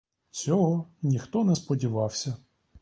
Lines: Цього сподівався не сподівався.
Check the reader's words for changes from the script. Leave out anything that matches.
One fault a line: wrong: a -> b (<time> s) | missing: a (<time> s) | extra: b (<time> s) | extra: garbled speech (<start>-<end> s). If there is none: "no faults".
wrong: сподівався -> ніхто (1.0 s)